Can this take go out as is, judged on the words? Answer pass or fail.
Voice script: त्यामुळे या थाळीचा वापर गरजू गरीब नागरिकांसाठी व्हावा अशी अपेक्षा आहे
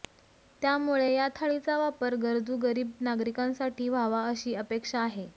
pass